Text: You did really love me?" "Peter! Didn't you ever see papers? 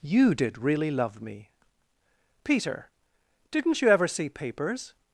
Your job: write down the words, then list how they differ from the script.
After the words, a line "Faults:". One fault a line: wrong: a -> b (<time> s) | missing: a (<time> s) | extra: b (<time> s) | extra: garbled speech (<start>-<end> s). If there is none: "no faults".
You did really love me?" "Peter! Didn't you ever see papers?
Faults:
no faults